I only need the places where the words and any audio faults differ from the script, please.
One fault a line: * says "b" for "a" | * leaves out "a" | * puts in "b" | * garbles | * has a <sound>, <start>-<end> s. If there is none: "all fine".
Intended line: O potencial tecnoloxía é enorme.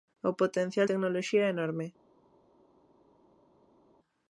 all fine